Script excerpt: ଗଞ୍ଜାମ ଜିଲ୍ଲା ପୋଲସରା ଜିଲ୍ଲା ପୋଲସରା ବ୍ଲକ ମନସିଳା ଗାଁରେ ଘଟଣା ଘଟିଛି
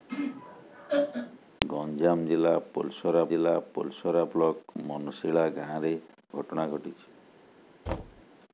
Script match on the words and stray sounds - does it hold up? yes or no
no